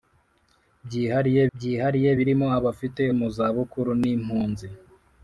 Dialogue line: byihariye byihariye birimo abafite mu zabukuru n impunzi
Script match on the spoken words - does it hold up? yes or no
yes